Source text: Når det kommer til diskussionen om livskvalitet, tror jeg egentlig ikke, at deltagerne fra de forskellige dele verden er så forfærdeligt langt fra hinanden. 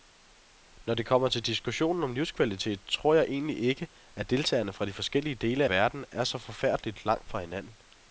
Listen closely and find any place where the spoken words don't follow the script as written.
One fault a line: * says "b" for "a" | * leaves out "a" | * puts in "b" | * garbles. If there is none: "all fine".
all fine